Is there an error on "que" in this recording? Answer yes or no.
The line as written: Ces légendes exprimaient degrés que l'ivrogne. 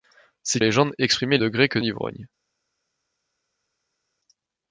no